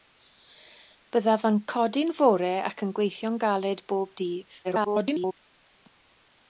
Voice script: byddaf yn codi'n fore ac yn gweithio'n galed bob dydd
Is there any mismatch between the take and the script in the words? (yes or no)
yes